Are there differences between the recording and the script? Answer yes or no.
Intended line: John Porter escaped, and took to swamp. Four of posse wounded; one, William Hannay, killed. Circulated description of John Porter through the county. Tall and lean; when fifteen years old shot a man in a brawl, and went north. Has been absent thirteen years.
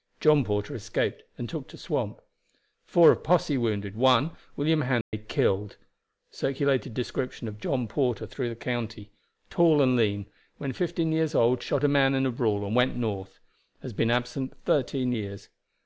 no